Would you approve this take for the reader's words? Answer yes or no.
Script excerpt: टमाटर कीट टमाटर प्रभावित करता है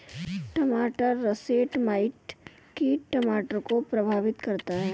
no